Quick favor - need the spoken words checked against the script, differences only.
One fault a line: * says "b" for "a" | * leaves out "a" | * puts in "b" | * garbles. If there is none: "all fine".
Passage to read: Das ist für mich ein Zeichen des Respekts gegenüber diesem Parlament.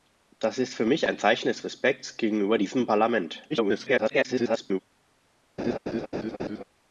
* garbles